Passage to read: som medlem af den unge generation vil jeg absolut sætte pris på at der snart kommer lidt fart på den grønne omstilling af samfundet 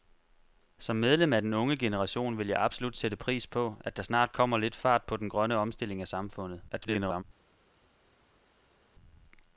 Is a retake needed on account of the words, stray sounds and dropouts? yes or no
yes